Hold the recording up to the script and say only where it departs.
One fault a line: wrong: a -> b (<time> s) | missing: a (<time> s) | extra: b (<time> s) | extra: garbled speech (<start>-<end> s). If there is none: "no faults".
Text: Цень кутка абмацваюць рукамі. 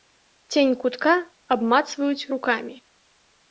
no faults